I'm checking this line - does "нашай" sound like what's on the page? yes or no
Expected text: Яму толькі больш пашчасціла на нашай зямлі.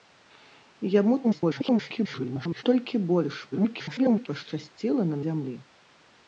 no